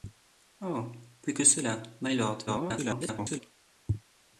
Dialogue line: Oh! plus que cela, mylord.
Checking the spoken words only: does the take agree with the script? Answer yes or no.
no